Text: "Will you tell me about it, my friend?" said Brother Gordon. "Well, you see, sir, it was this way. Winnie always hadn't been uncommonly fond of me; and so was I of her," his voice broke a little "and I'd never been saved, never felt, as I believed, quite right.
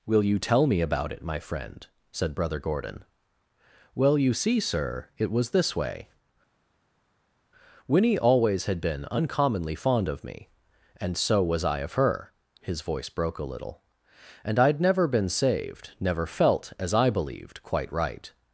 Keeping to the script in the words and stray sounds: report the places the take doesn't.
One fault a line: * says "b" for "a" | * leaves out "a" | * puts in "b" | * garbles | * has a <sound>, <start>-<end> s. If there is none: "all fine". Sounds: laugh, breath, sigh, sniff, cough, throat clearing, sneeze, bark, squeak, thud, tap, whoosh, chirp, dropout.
* says "had" for "hadn't"